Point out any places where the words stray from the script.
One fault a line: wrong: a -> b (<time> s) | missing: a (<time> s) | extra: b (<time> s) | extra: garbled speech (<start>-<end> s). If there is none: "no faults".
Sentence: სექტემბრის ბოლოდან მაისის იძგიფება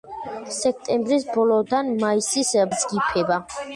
no faults